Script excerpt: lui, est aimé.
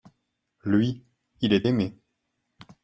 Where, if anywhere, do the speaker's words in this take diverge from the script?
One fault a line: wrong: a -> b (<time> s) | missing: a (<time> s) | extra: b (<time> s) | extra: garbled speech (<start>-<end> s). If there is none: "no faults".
extra: il (1.4 s)